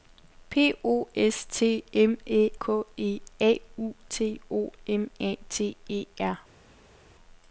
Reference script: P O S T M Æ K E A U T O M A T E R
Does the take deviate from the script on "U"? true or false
false